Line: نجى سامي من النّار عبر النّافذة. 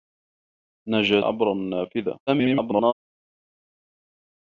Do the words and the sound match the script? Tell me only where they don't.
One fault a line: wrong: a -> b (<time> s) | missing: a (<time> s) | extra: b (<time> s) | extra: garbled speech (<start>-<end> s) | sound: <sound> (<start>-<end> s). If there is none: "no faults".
missing: سامي من النّار (1.2 s)
extra: garbled speech (2.3-2.9 s)